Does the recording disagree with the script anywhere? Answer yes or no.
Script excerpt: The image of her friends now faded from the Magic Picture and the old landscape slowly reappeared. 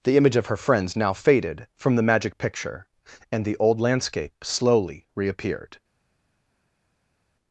no